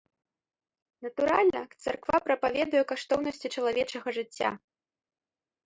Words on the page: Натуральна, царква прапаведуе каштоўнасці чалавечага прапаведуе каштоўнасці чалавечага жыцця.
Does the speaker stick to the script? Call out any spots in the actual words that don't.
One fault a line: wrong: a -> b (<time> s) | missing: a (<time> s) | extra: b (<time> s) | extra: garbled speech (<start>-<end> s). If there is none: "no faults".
missing: прапаведуе каштоўнасці чалавечага (4.1 s)